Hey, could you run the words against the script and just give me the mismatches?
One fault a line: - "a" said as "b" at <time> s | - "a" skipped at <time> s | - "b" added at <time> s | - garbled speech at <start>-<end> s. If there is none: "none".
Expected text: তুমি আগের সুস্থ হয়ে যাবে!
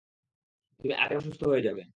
none